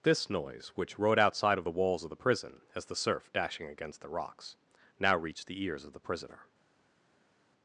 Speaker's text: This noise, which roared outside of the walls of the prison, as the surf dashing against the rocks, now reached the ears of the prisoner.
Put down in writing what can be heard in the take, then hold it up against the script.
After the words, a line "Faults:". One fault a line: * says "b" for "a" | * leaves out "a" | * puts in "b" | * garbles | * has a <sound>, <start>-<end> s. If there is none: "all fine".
This noise, which rode outside of the walls of the prison, as the surf dashing against the rocks, now reached the ears of the prisoner.
Faults:
* says "rode" for "roared"